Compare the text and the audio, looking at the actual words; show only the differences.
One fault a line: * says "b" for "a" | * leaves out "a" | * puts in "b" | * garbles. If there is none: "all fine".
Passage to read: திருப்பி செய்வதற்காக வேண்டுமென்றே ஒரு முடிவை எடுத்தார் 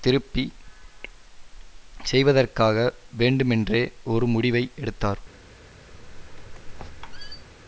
all fine